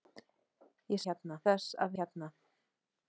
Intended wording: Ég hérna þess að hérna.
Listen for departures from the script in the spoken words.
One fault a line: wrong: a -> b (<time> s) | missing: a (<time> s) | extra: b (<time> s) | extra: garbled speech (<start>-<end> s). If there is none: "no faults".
no faults